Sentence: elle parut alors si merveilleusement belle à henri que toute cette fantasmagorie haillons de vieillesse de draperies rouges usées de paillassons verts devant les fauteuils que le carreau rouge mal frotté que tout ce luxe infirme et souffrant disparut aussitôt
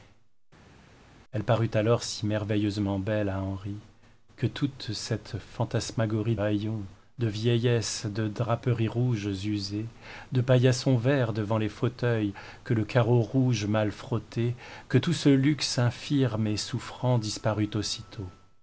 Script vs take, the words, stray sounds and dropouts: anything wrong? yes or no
no